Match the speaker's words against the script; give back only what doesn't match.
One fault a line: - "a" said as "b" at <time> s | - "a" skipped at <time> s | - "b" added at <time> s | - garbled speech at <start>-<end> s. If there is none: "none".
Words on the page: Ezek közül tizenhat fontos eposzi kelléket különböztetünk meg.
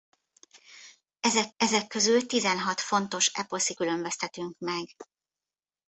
- "ezek" added at 1.6 s
- "kelléket" skipped at 3.7 s